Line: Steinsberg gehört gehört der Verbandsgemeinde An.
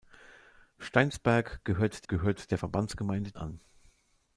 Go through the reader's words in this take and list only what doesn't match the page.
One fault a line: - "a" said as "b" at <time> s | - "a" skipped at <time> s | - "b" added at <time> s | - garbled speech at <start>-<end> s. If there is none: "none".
none